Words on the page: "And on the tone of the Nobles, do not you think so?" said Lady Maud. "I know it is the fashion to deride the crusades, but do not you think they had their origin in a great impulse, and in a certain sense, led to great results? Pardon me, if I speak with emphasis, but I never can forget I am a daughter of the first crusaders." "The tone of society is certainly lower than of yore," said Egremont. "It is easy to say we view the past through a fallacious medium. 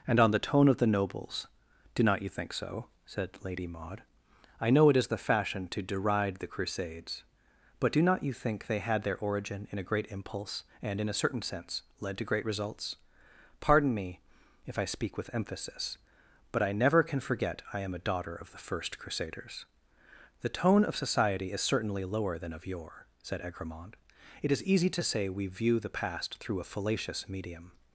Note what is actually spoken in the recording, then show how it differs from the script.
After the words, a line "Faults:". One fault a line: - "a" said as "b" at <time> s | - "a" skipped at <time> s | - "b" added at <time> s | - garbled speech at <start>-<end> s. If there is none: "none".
"And on the tone of the Nobles, do not you think so?" said Lady Maud. "I know it is the fashion to deride the crusades, but do not you think they had their origin in a great impulse, and in a certain sense, led to great results? Pardon me, if I speak with emphasis, but I never can forget I am a daughter of the first crusaders." "The tone of society is certainly lower than of yore," said Egremont. "It is easy to say we view the past through a fallacious medium.
Faults:
none